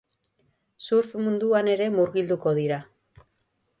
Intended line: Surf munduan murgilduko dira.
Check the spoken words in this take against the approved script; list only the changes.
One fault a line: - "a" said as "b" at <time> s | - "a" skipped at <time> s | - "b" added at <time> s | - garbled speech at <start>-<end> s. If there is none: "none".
- "ere" added at 1.8 s